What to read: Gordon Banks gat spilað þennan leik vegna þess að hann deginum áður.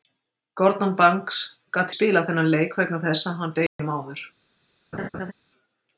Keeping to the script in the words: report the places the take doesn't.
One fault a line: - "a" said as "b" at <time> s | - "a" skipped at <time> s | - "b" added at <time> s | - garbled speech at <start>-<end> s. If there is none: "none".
none